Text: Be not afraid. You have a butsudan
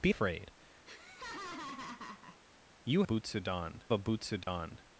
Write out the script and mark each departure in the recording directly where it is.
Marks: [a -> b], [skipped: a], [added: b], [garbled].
Be [skipped: not] afraid. You [have -> butsudan] a butsudan